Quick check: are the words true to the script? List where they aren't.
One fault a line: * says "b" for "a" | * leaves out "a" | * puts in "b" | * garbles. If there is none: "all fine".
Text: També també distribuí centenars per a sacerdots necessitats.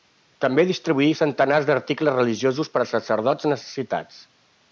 * leaves out "també"
* puts in "d'articles religiosos"